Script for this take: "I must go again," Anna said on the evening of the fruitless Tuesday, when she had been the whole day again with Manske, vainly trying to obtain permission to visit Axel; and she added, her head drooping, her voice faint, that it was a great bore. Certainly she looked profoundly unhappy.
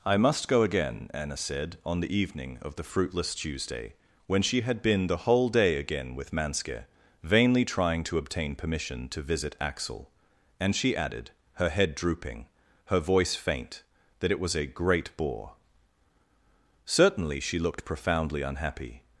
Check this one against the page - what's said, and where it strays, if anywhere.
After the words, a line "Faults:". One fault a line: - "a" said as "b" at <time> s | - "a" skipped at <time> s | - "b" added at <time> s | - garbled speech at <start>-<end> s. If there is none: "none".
"I must go again," Anna said on the evening of the fruitless Tuesday, when she had been the whole day again with Manske, vainly trying to obtain permission to visit Axel; and she added, her head drooping, her voice faint, that it was a great bore. Certainly she looked profoundly unhappy.
Faults:
none